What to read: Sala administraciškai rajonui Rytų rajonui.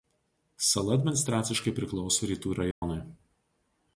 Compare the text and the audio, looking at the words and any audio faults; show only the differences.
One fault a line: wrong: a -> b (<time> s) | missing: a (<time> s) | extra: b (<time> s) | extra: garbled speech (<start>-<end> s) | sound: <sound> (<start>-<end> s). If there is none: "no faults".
wrong: rajonui -> priklauso (1.8 s)
sound: dropout (2.7-2.8 s)